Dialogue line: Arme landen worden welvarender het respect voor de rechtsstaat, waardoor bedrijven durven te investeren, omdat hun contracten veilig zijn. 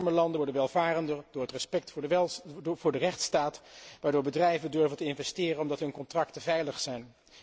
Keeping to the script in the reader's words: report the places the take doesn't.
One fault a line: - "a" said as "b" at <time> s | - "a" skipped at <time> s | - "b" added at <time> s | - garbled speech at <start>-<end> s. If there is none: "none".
- "door" added at 1.3 s